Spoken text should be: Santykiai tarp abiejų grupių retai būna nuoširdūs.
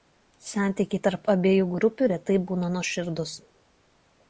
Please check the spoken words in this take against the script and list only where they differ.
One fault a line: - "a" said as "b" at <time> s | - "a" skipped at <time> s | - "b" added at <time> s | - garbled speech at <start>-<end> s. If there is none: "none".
none